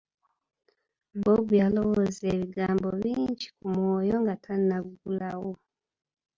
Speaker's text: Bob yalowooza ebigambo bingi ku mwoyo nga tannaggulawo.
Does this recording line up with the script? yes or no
yes